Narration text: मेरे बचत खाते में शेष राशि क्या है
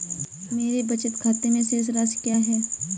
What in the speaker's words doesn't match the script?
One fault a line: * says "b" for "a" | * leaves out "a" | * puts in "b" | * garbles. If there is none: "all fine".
all fine